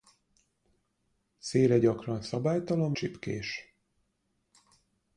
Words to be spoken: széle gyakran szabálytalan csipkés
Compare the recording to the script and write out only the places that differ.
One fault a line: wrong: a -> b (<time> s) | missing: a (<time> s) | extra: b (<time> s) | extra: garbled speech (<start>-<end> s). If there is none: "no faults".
no faults